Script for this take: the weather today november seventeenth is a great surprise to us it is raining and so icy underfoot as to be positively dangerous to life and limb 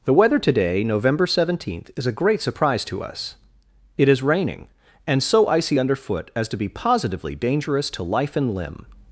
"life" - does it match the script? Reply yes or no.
yes